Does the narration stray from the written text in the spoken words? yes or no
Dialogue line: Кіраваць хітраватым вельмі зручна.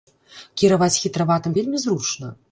no